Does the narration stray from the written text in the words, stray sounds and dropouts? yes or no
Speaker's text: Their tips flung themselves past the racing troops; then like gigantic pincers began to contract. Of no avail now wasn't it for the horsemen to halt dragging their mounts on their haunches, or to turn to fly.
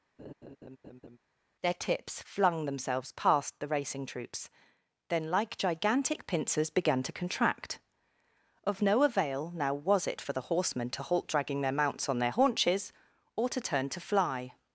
yes